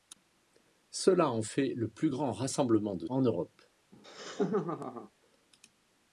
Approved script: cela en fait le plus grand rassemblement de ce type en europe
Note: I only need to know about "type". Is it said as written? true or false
false